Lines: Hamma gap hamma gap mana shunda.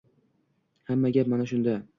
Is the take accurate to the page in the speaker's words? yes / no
no